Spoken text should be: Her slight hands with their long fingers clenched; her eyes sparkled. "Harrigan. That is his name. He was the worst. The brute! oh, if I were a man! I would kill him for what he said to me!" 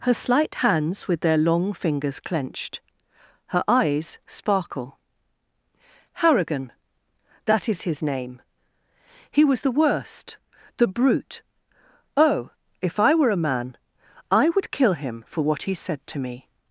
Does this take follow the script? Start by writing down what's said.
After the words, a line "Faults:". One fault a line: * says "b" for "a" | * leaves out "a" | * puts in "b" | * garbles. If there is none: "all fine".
Her slight hands with their long fingers clenched; her eyes sparkle. "Harrigan. That is his name. He was the worst. The brute! oh, if I were a man! I would kill him for what he said to me!"
Faults:
* says "sparkle" for "sparkled"